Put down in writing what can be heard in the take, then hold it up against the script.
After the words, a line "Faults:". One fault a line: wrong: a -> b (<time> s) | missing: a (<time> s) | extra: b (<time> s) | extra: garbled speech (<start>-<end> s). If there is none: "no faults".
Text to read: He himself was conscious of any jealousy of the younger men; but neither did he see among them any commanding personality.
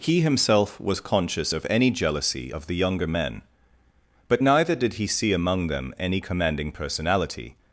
He himself was conscious of any jealousy of the younger men; but neither did he see among them any commanding personality.
Faults:
no faults